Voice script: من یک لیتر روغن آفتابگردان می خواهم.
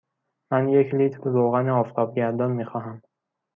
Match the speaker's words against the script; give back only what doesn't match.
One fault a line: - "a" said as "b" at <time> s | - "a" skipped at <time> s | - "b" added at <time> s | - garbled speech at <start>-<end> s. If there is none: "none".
none